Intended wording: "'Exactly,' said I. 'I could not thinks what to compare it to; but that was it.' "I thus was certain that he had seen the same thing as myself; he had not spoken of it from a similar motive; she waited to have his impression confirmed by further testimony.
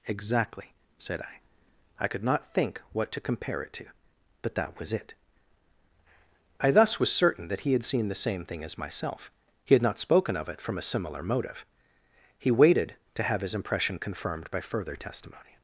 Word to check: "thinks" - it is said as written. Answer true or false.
false